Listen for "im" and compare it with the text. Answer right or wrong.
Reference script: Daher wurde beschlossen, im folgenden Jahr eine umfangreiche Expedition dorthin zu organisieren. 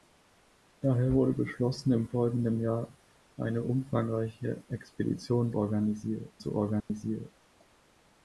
right